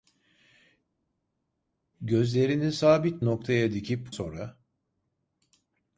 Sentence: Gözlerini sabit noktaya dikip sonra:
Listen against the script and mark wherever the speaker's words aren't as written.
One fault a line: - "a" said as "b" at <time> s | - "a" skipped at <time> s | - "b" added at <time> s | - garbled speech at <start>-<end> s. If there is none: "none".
none